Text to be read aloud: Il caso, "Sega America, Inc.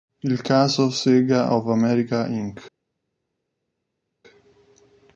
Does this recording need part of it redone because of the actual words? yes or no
yes